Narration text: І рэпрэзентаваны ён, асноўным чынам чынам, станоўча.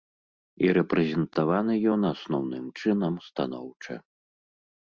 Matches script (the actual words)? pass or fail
fail